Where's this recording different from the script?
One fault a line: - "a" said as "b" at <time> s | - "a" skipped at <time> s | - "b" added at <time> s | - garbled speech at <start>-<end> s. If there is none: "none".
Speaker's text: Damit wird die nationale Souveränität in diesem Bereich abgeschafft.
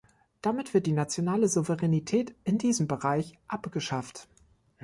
none